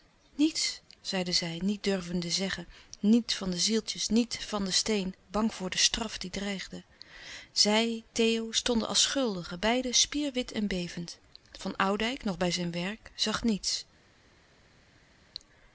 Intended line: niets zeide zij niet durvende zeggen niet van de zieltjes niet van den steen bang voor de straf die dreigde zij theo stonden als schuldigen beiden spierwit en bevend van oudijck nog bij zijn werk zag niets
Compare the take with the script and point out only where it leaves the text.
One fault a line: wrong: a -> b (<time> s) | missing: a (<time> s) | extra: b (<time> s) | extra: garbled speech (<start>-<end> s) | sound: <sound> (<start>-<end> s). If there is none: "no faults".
no faults